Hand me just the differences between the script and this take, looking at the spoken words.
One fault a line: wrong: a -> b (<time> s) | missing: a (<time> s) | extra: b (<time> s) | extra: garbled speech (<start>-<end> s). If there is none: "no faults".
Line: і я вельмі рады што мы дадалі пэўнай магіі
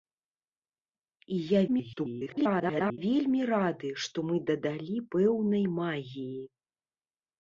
extra: garbled speech (1.7-3.0 s)